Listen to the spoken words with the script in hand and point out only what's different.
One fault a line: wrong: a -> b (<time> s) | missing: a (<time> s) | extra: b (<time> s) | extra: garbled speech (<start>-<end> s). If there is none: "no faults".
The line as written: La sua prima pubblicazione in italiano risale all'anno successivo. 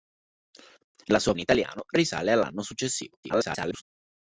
missing: prima pubblicazione (1.3 s)
extra: garbled speech (3.2-3.8 s)